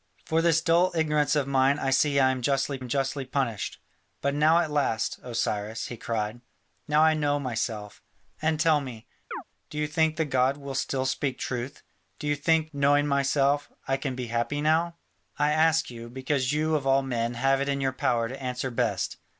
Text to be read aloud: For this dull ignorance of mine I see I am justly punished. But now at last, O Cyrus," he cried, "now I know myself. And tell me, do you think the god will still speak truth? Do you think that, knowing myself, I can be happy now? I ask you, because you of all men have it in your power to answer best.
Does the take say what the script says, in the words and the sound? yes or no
no